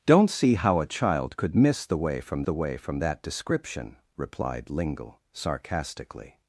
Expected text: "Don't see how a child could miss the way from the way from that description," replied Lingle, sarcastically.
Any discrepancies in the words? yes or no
no